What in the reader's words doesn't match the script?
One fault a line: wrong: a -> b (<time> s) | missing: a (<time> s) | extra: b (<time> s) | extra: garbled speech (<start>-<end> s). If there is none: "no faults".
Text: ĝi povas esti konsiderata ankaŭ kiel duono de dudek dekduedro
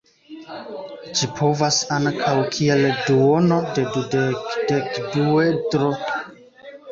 missing: esti konsiderata (1.8 s)